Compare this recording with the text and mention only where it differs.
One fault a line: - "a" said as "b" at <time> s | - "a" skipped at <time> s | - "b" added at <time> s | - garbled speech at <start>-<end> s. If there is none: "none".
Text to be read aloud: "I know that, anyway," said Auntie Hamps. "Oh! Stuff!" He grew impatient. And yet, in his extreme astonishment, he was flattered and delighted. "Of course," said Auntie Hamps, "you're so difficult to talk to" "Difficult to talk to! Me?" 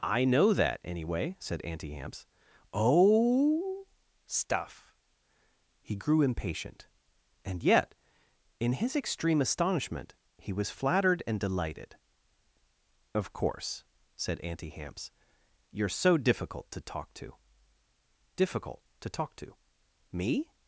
none